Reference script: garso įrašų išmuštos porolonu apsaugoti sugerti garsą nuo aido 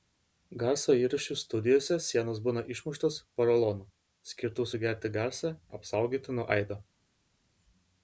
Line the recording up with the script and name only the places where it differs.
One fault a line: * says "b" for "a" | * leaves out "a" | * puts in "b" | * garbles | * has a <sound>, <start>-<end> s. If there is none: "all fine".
* puts in "studijose sienos būna"
* says "skirtu" for "apsaugoti"
* puts in "apsaugoti"